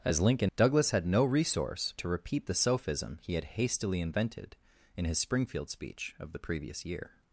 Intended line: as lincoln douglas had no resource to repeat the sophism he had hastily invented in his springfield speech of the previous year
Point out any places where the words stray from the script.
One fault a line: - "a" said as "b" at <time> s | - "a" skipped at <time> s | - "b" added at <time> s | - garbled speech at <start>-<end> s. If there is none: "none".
none